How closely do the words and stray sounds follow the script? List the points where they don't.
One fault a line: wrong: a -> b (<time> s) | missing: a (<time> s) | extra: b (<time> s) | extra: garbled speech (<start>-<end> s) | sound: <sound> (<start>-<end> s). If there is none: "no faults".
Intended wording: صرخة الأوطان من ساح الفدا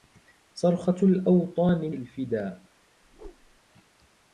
missing: من ساح (1.9 s)
sound: whoosh (3.0-3.6 s)